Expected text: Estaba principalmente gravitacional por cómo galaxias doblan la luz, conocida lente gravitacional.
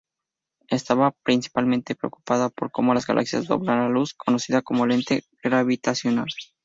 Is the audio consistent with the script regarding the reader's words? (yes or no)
no